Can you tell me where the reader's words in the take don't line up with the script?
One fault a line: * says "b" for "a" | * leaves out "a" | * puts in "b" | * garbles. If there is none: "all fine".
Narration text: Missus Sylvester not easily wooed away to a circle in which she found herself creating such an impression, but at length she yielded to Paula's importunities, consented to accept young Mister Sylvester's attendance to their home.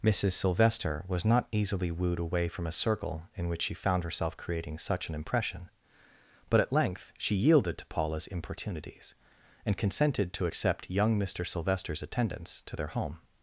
* puts in "was"
* says "from" for "to"
* puts in "and"